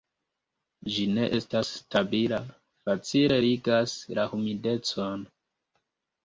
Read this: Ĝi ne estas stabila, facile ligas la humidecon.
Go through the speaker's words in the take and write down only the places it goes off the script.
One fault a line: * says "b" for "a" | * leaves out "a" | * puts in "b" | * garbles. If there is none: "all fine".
all fine